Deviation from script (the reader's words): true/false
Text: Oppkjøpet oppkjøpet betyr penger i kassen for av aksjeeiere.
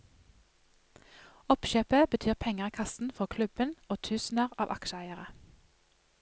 true